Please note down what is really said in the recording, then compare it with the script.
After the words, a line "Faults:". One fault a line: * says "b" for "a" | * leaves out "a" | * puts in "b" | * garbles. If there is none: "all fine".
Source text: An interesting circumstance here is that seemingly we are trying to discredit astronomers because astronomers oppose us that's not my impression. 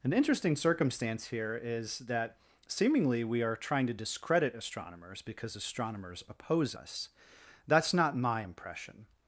An interesting circumstance here is that seemingly we are trying to discredit astronomers because astronomers oppose us that's not my impression.
Faults:
all fine